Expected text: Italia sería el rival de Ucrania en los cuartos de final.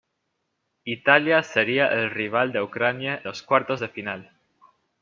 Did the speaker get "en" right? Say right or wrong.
wrong